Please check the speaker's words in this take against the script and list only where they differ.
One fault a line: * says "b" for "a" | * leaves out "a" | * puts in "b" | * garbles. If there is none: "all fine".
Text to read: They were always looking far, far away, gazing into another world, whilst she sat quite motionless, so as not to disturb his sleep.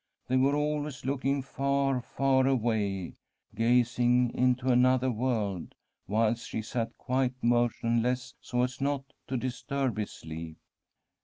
all fine